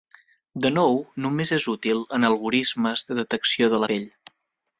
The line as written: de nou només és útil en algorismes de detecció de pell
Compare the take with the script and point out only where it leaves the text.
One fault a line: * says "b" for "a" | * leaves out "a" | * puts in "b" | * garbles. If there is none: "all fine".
all fine